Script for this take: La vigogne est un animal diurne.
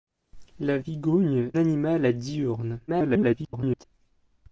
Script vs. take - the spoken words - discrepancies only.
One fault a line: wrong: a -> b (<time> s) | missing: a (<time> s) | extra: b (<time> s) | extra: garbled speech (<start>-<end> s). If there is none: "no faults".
missing: est un (1.5 s)
extra: garbled speech (2.9-3.8 s)